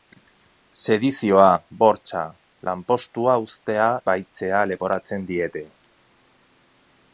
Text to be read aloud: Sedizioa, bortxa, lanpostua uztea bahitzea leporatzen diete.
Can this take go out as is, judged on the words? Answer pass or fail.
pass